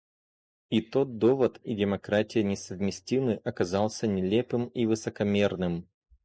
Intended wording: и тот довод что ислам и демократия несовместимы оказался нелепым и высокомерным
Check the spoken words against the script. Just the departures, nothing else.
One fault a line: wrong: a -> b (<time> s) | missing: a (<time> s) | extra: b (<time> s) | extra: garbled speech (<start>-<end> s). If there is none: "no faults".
missing: что ислам (1.6 s)